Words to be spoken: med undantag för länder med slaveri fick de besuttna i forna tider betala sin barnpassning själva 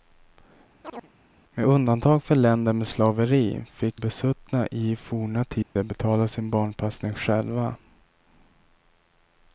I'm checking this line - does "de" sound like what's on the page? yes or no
no